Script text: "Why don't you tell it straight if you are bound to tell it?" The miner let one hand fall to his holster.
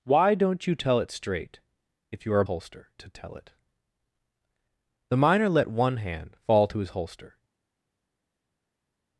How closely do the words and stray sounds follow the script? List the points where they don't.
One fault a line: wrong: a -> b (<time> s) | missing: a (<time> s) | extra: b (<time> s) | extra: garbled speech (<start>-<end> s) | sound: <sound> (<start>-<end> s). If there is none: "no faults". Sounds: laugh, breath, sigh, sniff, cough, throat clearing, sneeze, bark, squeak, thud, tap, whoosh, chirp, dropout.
wrong: bound -> holster (2.4 s)